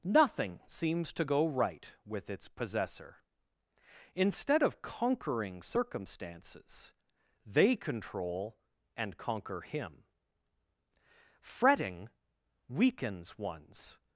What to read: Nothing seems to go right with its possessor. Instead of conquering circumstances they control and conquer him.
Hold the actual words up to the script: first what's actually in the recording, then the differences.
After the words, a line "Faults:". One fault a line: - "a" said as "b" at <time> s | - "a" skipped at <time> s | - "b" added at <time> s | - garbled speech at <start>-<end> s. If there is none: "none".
Nothing seems to go right with its possessor. Instead of conquering circumstances they control and conquer him. Fretting weakens one's
Faults:
- "Fretting weakens one's" added at 11.4 s